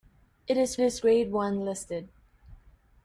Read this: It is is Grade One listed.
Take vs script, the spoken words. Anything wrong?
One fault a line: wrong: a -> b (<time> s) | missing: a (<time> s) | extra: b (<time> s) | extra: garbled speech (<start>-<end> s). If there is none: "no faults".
no faults